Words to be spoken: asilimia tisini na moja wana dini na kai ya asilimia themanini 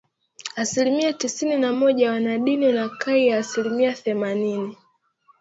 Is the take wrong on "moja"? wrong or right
right